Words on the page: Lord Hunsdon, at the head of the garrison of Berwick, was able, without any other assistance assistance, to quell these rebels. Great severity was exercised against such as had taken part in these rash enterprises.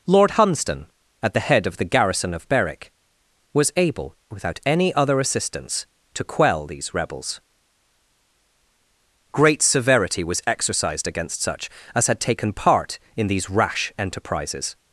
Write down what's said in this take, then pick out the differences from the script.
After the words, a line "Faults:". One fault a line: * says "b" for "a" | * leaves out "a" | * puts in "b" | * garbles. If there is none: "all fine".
Lord Hunsdon, at the head of the garrison of Berwick, was able, without any other assistance, to quell these rebels. Great severity was exercised against such as had taken part in these rash enterprises.
Faults:
* leaves out "assistance"